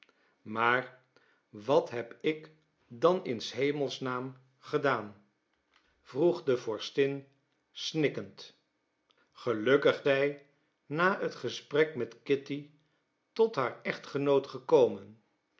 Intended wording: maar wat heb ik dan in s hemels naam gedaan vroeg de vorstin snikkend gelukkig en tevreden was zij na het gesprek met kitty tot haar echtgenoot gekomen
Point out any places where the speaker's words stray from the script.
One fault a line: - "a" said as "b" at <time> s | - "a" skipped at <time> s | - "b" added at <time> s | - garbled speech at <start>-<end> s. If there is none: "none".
- "en tevreden was" skipped at 10.0 s